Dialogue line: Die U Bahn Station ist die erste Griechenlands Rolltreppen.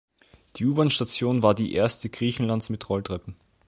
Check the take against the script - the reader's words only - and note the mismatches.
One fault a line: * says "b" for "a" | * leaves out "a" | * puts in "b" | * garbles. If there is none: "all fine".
* says "war" for "ist"
* puts in "mit"